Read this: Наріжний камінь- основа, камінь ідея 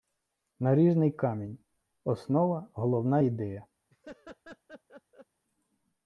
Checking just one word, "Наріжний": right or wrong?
right